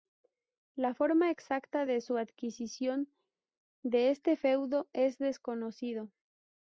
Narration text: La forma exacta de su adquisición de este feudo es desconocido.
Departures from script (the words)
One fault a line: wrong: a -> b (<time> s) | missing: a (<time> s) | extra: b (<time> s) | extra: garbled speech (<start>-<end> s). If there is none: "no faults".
no faults